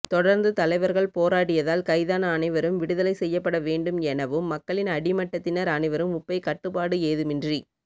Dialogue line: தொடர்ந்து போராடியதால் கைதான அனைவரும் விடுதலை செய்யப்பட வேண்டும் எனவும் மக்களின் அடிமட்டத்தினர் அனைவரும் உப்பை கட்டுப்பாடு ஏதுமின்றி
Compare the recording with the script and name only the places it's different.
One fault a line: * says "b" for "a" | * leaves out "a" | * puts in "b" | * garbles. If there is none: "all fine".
* puts in "தலைவர்கள்"